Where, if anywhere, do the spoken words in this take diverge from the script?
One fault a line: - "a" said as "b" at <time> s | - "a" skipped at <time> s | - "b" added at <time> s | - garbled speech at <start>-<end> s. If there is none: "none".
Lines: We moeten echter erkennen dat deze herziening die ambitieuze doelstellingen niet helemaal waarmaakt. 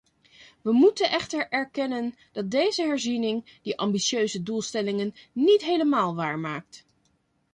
none